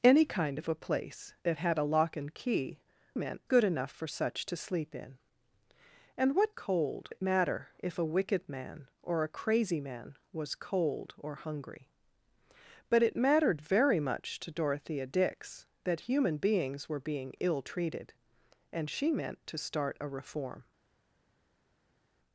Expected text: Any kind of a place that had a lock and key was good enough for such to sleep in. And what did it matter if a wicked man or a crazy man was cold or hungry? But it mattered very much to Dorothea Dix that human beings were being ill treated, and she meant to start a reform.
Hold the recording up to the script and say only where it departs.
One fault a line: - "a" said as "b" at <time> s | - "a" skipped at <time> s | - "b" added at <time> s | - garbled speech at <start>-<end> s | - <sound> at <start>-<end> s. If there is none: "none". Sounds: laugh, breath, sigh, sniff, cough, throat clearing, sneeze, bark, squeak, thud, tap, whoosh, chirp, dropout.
- "was" said as "meant" at 3.1 s
- "did" said as "cold" at 6.5 s